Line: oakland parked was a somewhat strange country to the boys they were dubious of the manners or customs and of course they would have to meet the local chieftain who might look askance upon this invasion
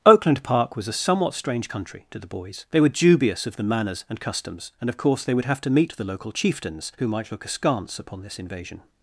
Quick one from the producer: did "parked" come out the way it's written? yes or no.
no